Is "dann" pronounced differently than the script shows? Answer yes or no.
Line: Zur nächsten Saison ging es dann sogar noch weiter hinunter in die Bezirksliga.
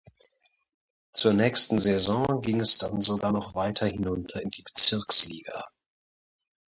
no